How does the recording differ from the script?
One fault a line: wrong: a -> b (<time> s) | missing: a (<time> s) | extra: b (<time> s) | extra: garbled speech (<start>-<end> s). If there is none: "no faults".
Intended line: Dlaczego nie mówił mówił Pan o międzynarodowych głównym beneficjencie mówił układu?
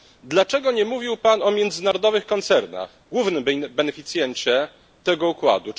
missing: mówił (1.2 s)
extra: koncernach (2.2 s)
wrong: mówił -> tego (5.0 s)